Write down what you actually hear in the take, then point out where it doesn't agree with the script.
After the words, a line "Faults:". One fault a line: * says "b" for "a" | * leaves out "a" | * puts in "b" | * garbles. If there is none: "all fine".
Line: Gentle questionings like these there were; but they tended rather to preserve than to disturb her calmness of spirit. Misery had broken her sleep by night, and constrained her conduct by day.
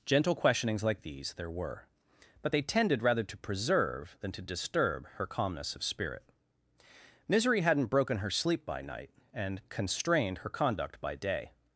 Gentle questionings like these there were; but they tended rather to preserve than to disturb her calmness of spirit. Misery hadn't broken her sleep by night, and constrained her conduct by day.
Faults:
* says "hadn't" for "had"